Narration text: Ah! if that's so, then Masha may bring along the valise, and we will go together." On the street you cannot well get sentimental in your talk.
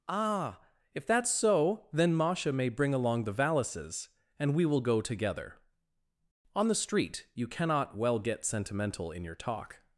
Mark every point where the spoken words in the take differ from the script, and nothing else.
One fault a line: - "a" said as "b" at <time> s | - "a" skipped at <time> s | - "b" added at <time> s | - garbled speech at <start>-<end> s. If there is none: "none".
- "valise" said as "valises" at 3.3 s